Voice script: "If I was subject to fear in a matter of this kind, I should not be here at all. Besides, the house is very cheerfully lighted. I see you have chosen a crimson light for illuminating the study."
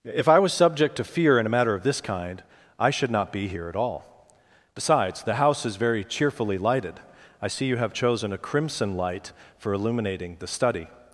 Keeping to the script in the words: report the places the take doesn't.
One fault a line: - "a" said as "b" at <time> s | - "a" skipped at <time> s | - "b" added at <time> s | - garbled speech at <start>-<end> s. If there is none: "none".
none